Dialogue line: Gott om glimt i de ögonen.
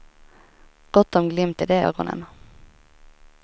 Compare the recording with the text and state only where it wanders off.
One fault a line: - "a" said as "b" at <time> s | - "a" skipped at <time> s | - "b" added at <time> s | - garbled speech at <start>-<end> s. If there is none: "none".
none